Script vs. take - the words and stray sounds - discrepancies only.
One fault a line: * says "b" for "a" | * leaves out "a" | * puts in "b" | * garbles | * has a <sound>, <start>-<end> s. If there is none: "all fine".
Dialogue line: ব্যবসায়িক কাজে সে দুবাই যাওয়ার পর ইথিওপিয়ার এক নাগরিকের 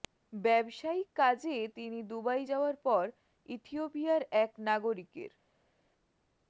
* says "তিনি" for "সে"